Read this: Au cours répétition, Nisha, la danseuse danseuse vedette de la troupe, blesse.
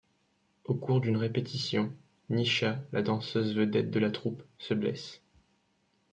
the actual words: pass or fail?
fail